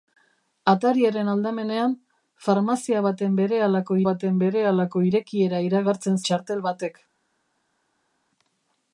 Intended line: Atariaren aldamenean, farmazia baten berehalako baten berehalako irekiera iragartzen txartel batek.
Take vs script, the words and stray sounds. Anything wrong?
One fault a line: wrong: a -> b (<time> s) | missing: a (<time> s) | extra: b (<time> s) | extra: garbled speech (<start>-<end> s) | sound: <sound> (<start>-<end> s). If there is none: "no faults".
no faults